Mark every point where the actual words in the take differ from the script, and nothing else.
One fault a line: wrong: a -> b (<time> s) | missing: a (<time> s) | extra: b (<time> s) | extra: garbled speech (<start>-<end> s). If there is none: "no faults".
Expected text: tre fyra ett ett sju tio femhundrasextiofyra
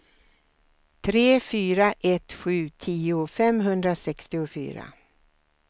missing: ett (2.3 s)